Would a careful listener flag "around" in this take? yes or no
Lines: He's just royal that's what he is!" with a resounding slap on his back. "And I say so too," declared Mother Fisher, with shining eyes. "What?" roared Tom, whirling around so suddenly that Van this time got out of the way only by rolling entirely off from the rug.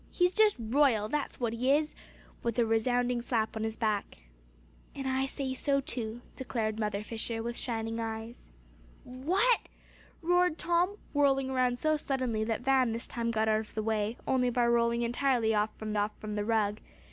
no